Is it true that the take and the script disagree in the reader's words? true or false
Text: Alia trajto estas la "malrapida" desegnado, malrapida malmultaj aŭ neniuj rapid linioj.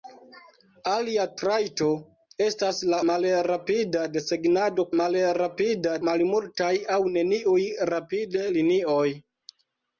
false